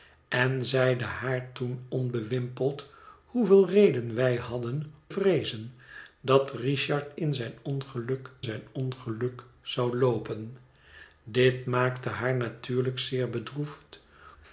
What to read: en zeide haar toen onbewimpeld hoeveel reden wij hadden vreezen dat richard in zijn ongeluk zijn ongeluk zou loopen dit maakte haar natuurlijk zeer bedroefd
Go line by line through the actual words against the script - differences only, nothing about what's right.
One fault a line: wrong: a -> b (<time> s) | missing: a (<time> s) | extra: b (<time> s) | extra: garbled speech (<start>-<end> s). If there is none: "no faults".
no faults